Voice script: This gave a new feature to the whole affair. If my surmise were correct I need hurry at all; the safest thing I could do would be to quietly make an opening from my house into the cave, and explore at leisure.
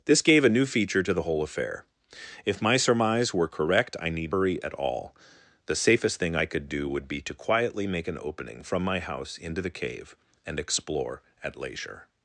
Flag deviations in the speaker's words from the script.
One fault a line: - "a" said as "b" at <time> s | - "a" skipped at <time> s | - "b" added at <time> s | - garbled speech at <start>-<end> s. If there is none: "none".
none